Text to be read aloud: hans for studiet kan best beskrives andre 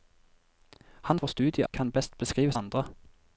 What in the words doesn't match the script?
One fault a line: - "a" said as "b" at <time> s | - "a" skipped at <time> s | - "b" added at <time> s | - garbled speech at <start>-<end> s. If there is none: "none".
none